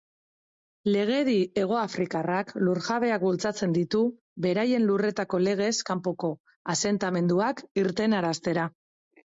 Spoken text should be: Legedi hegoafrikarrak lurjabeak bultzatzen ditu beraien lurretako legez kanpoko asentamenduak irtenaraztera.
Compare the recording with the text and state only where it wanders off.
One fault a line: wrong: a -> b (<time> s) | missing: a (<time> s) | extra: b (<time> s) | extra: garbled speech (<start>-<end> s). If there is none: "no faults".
no faults